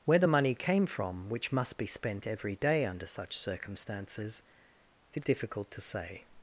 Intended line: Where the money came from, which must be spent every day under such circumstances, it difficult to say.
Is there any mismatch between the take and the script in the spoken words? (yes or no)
no